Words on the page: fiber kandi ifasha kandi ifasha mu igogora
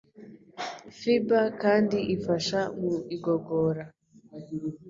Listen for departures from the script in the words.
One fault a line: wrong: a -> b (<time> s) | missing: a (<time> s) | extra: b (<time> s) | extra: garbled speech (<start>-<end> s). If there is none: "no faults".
missing: kandi ifasha (2.6 s)